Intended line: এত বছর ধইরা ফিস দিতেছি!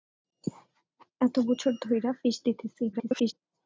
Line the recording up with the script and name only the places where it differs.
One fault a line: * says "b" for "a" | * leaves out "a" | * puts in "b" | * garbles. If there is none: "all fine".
* garbles